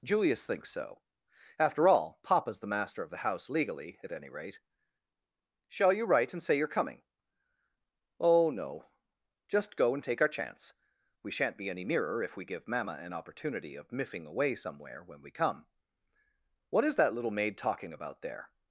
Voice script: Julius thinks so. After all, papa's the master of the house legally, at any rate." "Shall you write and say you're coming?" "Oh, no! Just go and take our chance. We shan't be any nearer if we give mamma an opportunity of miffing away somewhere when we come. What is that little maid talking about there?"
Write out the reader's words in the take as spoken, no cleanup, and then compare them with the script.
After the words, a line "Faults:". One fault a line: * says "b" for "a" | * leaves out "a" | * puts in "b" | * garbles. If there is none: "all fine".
Julius thinks so. After all, papa's the master of the house legally, at any rate." "Shall you write and say you're coming?" "Oh, no! Just go and take our chance. We shan't be any nearer if we give mamma an opportunity of miffing away somewhere when we come. What is that little maid talking about there?"
Faults:
all fine